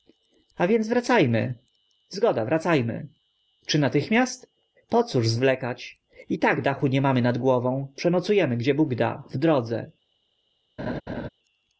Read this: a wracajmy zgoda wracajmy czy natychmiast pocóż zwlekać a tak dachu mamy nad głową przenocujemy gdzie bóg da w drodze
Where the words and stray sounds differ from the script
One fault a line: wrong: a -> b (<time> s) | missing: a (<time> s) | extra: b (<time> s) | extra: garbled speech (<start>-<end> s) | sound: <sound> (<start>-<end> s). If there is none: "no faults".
extra: więc (0.7 s)
wrong: a -> i (6.3 s)
extra: nie (6.9 s)
sound: laugh (10.8-11.3 s)